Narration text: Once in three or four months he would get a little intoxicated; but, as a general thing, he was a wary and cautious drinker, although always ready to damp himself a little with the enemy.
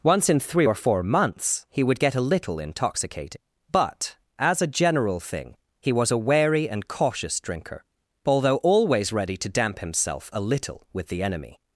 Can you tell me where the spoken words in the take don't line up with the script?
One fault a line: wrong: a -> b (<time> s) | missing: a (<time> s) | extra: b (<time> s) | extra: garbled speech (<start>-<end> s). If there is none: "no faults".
no faults